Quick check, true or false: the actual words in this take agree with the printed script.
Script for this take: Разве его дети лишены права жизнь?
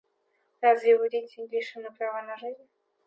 false